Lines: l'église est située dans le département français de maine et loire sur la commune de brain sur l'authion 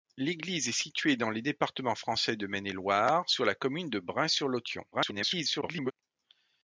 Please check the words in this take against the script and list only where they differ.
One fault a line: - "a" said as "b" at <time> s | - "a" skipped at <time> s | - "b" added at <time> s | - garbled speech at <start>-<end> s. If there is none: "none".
- garbled speech at 4.9-5.9 s